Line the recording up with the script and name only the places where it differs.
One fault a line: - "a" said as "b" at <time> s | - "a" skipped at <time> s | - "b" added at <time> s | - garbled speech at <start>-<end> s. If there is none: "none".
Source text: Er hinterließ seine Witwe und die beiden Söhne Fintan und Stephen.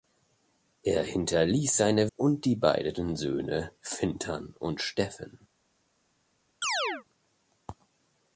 - "Witwe" skipped at 2.1 s